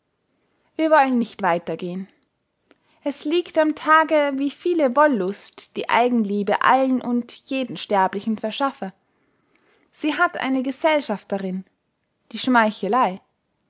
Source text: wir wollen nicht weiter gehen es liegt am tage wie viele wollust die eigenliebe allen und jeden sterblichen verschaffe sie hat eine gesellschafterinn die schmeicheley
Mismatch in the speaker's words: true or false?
false